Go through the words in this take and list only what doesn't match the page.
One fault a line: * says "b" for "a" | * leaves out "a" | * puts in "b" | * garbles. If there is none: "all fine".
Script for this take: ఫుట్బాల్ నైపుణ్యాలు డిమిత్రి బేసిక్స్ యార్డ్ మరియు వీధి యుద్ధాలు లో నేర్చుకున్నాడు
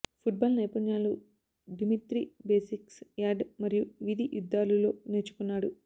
all fine